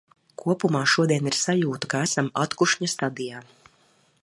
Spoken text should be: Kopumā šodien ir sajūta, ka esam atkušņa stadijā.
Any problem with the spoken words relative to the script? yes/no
no